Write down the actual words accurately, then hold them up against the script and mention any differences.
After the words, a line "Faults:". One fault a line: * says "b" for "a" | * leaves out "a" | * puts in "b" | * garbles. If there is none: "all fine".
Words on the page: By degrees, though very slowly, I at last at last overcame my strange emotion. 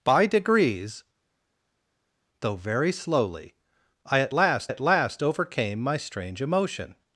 By degrees, though very slowly, I at last at last overcame my strange emotion.
Faults:
all fine